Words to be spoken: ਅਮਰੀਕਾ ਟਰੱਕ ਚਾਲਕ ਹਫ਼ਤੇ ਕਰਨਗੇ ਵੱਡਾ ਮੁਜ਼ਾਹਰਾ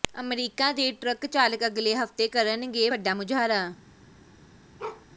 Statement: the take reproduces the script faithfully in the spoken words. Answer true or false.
false